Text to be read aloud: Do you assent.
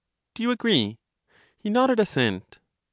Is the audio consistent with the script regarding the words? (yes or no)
no